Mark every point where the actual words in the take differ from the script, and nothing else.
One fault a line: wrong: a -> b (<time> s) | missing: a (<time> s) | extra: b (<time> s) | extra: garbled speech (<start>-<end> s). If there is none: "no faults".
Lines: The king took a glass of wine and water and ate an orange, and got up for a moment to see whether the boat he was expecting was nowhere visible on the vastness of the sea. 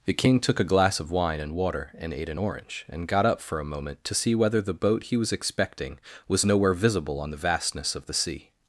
no faults